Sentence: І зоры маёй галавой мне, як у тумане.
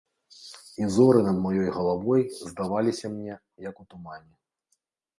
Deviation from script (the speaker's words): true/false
true